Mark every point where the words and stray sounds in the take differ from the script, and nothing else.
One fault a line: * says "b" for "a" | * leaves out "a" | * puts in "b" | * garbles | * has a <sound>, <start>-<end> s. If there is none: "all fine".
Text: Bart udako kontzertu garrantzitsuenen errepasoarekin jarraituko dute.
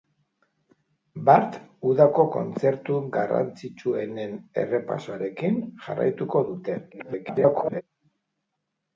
* garbles